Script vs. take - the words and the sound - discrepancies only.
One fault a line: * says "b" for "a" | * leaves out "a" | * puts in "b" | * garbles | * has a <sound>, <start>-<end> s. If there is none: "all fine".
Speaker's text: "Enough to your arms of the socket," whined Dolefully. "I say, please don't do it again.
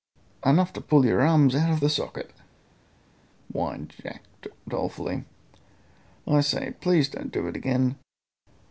* puts in "pull"
* puts in "out"
* puts in "Jack"